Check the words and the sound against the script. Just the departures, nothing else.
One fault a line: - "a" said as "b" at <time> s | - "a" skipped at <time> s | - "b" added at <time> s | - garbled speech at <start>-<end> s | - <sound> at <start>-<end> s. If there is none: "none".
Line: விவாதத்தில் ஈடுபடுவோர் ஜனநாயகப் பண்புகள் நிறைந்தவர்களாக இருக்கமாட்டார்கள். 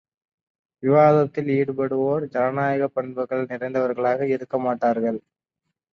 none